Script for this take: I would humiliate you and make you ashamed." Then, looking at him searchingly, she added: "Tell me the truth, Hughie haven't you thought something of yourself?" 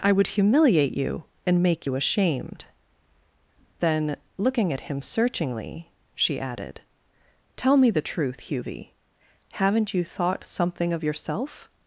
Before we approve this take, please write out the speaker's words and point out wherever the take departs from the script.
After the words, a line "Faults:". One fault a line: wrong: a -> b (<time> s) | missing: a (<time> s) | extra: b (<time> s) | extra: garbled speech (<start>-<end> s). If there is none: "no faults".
I would humiliate you and make you ashamed." Then, looking at him searchingly, she added: "Tell me the truth, Hughie haven't you thought something of yourself?"
Faults:
no faults